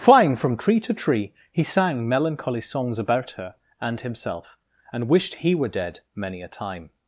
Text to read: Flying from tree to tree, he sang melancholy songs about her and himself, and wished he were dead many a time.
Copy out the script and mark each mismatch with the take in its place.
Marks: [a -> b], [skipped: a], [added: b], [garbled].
Flying from tree to tree, he sang melancholy songs about her and himself, and wished he were dead many a time.